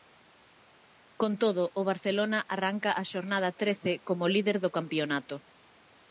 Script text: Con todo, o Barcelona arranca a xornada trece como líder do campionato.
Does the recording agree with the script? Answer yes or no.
yes